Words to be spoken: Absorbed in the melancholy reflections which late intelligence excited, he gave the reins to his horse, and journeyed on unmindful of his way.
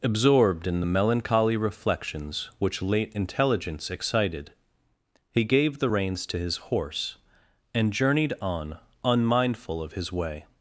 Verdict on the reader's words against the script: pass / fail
pass